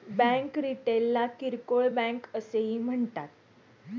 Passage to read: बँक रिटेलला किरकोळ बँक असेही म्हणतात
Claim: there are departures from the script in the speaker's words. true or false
false